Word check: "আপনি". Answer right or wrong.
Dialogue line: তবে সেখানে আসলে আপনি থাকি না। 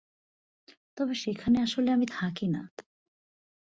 wrong